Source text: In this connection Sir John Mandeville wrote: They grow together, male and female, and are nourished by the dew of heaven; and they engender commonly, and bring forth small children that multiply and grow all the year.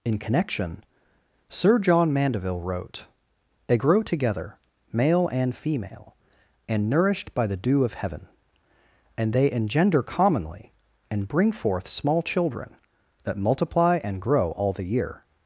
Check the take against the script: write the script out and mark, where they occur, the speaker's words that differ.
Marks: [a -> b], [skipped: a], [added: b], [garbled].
In [skipped: this] connection Sir John Mandeville wrote: They grow together, male and female, and [skipped: are] nourished by the dew of heaven; and they engender commonly, and bring forth small children that multiply and grow all the year.